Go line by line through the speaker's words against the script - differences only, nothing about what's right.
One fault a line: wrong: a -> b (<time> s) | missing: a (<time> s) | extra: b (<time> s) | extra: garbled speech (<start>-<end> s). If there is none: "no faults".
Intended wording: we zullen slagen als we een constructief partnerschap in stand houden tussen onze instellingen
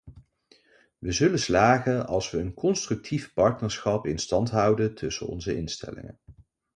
no faults